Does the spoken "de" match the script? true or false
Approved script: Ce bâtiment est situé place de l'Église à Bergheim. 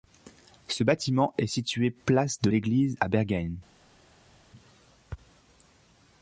true